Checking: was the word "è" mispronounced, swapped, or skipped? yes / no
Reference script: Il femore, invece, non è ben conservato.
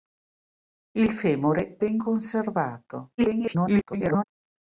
yes